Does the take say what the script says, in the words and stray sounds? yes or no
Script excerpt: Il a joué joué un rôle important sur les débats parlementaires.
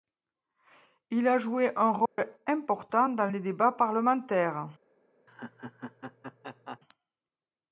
no